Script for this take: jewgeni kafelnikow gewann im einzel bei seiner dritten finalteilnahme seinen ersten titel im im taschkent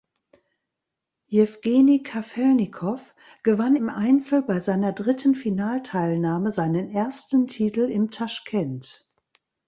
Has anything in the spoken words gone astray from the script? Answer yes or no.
yes